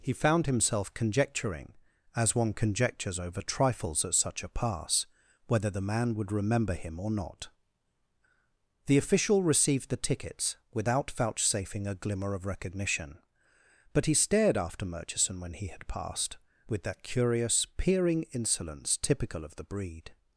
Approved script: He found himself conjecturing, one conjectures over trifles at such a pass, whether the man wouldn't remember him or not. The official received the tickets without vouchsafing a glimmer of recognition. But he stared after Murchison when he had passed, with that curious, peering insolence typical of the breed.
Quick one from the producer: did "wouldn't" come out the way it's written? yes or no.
no